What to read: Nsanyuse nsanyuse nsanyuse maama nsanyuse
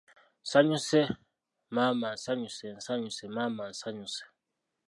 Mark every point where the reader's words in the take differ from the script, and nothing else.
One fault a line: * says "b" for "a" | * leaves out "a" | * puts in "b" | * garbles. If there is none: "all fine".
* puts in "maama"